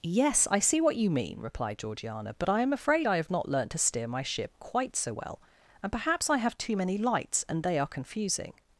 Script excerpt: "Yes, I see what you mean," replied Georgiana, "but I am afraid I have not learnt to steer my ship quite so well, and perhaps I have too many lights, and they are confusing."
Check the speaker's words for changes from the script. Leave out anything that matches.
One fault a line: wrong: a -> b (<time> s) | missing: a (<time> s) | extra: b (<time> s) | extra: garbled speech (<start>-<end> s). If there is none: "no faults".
no faults